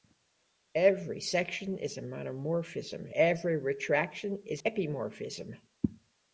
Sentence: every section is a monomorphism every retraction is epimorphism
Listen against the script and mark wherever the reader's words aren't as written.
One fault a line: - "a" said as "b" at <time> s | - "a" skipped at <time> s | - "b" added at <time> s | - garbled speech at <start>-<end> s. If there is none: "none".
none